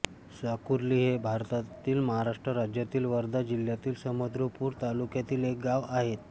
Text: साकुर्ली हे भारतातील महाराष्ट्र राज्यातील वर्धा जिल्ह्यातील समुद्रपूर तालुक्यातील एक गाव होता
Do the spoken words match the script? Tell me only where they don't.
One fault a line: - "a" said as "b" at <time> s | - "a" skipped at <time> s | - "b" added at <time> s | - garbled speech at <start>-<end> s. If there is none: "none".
- "होता" said as "आहे" at 5.9 s